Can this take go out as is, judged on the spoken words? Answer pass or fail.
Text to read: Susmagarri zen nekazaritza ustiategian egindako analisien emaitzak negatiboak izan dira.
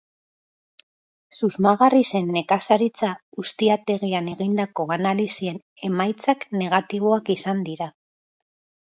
pass